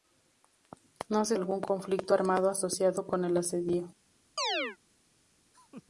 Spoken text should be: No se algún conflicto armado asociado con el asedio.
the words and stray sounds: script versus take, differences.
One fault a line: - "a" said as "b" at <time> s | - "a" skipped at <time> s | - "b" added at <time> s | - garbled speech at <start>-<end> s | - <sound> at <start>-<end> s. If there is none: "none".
- chirp at 4.4-4.8 s
- laugh at 5.5-5.8 s